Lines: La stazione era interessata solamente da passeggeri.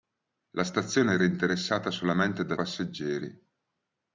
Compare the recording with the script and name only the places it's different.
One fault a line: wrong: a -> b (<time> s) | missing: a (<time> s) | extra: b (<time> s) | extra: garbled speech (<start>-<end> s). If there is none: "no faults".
no faults